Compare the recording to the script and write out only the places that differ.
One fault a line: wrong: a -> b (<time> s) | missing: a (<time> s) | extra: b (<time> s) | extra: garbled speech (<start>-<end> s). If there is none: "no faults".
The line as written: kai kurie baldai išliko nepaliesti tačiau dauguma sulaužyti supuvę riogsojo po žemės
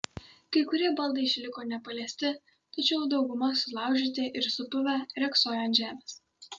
extra: ir (4.4 s)
wrong: po -> ant (5.7 s)